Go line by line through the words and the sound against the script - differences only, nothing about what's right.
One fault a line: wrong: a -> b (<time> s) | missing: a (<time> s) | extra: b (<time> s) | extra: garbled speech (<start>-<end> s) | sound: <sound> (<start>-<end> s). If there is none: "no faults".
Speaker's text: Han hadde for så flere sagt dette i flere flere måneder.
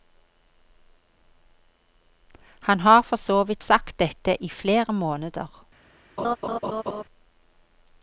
wrong: hadde -> har (2.8 s)
wrong: flere -> vidt (3.4 s)
missing: flere (4.9 s)
sound: laugh (6.2-7.0 s)